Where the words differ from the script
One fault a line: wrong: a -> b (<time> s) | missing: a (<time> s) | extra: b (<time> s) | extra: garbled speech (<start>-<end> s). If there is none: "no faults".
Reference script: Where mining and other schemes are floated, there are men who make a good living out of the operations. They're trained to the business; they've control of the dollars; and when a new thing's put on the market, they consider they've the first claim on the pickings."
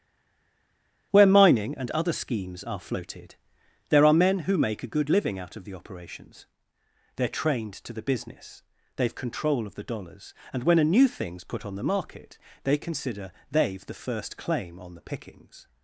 no faults